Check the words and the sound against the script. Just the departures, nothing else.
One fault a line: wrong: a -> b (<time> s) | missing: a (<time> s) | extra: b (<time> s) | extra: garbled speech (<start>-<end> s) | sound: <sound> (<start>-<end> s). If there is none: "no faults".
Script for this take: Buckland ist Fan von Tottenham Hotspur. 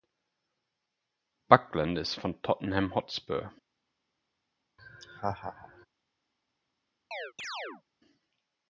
missing: Fan (2.1 s)
sound: laugh (4.8-5.9 s)
sound: chirp (7.1-7.8 s)